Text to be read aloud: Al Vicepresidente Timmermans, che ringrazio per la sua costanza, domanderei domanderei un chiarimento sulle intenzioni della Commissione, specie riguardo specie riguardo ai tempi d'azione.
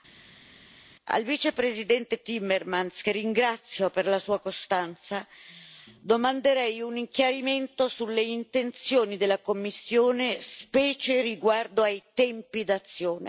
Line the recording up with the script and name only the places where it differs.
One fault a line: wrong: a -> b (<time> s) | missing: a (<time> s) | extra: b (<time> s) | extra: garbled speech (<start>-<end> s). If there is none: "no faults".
missing: domanderei (6.8 s)
missing: specie riguardo (11.8 s)